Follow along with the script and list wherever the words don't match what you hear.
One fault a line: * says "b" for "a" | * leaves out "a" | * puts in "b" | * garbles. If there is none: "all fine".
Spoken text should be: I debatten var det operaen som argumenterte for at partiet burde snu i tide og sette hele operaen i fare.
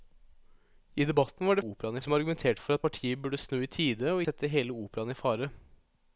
all fine